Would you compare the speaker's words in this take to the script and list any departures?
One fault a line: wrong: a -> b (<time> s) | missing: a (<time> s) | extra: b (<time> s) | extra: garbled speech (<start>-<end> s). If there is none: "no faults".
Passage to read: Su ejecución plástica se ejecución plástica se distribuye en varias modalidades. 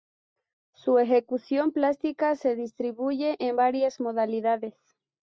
missing: ejecución plástica se (2.5 s)